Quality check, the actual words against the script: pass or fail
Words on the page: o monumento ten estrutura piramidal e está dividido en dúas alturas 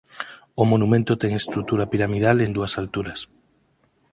fail